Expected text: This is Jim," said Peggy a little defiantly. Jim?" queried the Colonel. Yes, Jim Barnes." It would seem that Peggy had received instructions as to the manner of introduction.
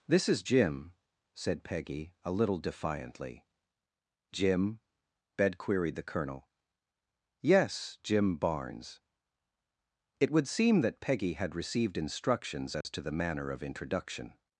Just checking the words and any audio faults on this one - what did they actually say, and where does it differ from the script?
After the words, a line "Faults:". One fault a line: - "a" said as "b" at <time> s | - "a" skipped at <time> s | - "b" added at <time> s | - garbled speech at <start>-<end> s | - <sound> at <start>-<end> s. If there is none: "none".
This is Jim," said Peggy a little defiantly. Jim?" bed queried the Colonel. Yes, Jim Barnes." It would seem that Peggy had received instructions as to the manner of introduction.
Faults:
- "bed" added at 5.4 s
- dropout at 12.8-12.8 s